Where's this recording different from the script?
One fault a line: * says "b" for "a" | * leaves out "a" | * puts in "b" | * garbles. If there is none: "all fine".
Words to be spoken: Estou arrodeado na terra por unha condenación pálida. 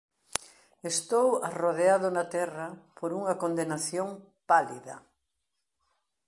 all fine